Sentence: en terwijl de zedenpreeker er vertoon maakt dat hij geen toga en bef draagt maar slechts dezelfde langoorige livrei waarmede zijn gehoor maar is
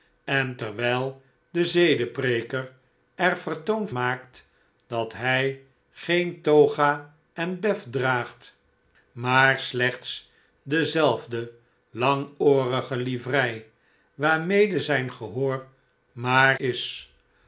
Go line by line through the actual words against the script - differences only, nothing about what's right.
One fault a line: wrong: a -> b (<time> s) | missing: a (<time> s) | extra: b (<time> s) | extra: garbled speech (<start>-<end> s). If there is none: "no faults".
no faults